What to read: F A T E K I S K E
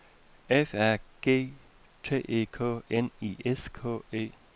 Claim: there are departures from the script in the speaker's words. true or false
true